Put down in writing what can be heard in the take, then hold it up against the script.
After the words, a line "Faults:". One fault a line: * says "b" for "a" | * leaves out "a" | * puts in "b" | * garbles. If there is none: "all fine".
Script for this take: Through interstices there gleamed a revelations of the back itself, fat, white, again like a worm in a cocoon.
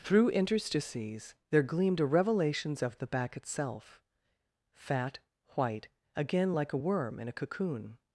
Through interstices there gleamed a revelations of the back itself, fat, white, again like a worm in a cocoon.
Faults:
all fine